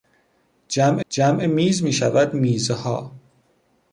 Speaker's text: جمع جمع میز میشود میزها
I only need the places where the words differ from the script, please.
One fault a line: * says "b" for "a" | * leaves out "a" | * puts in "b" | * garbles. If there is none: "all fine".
all fine